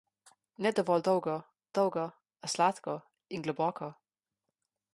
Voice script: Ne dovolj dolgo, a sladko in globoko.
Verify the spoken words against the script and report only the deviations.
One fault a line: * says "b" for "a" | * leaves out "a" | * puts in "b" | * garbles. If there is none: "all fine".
* puts in "dolgo"